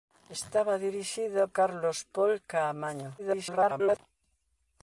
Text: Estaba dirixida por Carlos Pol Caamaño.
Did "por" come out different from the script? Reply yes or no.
yes